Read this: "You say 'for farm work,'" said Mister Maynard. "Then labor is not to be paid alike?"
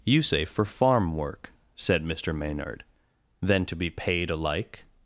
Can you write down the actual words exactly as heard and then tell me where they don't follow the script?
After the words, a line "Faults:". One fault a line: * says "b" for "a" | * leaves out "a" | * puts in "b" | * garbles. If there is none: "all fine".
"You say 'for farm work,'" said Mister Maynard. "Then to be paid alike?"
Faults:
* leaves out "labor is not"